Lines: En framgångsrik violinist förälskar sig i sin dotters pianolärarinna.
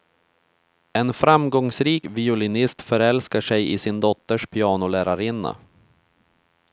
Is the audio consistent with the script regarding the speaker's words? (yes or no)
yes